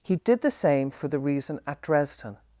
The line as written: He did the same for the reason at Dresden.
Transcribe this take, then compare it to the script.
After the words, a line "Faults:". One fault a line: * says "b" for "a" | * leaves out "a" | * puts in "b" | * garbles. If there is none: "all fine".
He did the same for the reason at Dresden.
Faults:
all fine